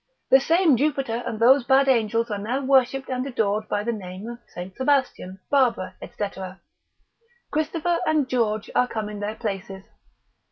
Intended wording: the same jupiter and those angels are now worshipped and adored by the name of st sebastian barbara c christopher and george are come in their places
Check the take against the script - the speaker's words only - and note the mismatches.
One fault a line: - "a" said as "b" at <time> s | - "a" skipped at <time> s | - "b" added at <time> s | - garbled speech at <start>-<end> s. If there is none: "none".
- "bad" added at 1.6 s